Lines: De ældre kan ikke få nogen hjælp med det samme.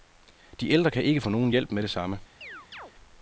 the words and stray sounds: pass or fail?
fail